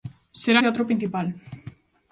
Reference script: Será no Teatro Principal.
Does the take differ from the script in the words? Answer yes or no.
yes